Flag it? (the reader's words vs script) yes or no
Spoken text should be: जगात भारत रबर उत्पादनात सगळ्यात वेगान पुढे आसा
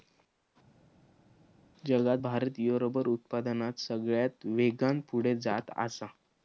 yes